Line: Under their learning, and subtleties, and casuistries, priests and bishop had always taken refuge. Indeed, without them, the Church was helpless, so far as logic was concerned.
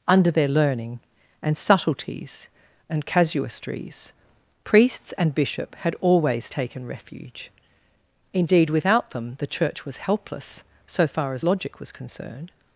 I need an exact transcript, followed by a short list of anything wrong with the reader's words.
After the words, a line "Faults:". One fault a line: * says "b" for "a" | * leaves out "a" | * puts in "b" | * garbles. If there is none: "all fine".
Under their learning, and subtleties, and casuistries, priests and bishop had always taken refuge. Indeed, without them, the Church was helpless, so far as logic was concerned.
Faults:
all fine